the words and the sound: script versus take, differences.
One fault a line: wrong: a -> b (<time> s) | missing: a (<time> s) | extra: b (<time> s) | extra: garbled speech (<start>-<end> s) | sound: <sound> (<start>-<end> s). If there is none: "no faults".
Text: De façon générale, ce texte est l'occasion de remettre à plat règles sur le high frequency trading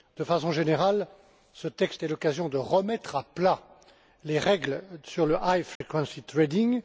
extra: les (4.2 s)
sound: dropout (5.8-5.8 s)